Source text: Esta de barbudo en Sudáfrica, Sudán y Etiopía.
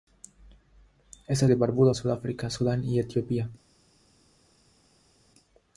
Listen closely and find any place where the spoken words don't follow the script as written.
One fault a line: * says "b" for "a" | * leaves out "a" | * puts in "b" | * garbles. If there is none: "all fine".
all fine